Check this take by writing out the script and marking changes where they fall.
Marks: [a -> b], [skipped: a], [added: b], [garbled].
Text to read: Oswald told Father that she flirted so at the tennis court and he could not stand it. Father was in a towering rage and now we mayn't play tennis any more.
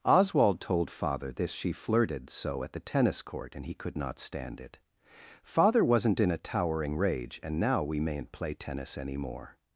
Oswald told Father [that -> this] she flirted so at the tennis court and he could not stand it. Father [was -> wasn't] in a towering rage and now we mayn't play tennis any more.